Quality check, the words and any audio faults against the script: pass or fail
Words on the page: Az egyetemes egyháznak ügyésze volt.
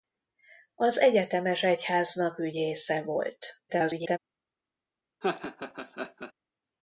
fail